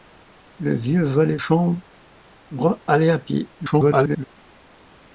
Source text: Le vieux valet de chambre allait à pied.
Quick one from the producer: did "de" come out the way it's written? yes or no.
no